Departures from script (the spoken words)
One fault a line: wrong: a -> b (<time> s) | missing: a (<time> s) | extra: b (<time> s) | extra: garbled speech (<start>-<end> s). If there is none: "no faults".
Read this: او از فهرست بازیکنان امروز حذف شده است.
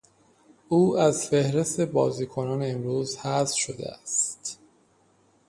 no faults